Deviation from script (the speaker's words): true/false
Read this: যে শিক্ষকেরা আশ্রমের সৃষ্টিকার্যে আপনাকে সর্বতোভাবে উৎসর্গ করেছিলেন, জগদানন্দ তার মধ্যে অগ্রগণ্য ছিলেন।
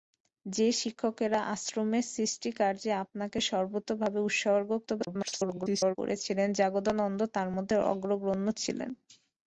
true